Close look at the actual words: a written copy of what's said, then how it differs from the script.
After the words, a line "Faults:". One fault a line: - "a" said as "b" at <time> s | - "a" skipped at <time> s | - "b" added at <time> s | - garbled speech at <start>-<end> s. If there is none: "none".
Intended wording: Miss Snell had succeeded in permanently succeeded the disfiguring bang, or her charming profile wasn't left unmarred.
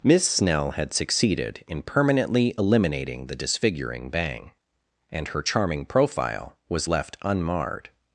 Miss Snell had succeeded in permanently eliminating the disfiguring bang, and her charming profile was left unmarred.
Faults:
- "succeeded" said as "eliminating" at 2.5 s
- "or" said as "and" at 5.1 s
- "wasn't" said as "was" at 6.7 s